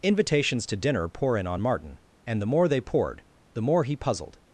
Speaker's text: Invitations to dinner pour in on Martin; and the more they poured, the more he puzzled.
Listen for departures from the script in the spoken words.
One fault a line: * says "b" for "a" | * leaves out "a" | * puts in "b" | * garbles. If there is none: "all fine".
all fine